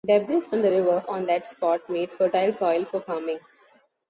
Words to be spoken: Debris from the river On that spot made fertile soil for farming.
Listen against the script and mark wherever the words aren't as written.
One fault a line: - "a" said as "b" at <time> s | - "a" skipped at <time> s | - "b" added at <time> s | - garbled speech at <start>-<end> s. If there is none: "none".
none